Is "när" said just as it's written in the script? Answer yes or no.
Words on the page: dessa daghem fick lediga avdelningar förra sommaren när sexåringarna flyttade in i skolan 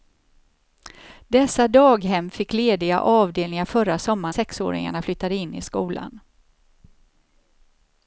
no